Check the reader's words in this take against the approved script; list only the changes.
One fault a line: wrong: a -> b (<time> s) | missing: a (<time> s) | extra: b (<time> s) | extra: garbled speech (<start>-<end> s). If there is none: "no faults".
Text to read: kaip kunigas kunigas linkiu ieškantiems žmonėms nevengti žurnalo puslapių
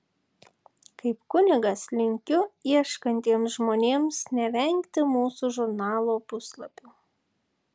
missing: kunigas (1.8 s)
extra: mūsų (5.1 s)